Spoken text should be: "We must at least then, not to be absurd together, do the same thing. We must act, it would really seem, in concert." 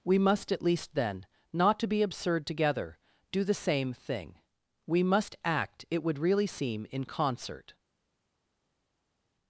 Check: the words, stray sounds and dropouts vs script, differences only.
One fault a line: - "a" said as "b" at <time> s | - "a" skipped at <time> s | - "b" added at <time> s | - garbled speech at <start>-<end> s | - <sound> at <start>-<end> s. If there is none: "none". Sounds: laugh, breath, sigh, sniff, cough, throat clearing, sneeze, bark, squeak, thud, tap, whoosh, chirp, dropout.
none